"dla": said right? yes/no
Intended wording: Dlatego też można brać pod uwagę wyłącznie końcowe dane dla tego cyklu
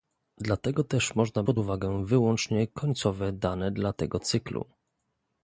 yes